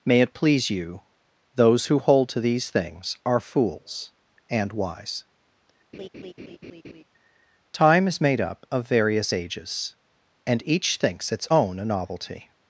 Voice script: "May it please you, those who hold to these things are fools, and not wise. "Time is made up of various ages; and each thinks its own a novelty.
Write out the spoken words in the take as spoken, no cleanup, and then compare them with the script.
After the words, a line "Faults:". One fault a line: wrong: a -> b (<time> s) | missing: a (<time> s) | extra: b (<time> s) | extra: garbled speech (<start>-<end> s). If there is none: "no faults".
"May it please you, those who hold to these things are fools, and wise. "Time is made up of various ages; and each thinks its own a novelty.
Faults:
missing: not (4.7 s)